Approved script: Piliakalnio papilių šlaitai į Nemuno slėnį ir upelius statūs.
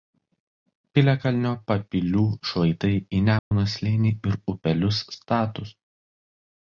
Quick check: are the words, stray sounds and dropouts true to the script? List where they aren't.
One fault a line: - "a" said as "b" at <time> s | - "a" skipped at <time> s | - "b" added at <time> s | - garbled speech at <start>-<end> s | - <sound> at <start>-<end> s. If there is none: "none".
- dropout at 3.4-3.5 s